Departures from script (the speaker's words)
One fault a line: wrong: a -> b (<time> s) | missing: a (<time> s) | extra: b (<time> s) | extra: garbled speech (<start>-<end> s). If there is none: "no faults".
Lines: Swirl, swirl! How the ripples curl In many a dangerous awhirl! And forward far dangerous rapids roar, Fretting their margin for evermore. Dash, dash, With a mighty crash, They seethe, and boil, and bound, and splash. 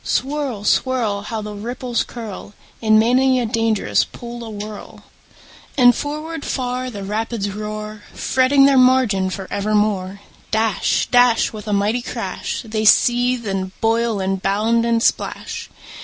extra: pool (4.0 s)
wrong: dangerous -> the (6.9 s)